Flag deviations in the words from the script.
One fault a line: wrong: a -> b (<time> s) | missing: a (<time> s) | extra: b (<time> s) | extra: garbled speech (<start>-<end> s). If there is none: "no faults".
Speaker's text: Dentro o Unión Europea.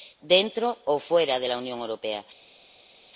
extra: fuera de la (1.0 s)